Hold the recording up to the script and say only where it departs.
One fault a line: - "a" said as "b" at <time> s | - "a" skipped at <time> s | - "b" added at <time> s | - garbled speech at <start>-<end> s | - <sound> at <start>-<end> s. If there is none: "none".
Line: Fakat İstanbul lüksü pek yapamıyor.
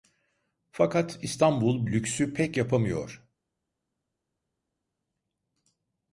none